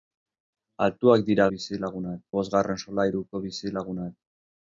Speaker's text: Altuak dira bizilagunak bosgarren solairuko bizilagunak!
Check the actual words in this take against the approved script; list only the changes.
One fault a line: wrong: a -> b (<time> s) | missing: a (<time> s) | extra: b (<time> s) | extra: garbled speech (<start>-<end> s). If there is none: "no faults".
no faults